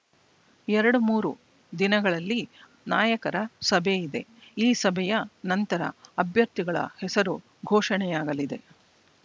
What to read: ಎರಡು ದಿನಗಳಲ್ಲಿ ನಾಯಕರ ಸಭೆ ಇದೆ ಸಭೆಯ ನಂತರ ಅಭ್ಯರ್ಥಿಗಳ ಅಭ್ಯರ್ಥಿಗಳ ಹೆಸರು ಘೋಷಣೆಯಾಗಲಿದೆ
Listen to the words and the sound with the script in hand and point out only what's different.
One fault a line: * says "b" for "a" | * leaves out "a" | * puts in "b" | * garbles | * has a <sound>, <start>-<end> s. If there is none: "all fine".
* puts in "ಮೂರು"
* puts in "ಈ"
* leaves out "ಅಭ್ಯರ್ಥಿಗಳ"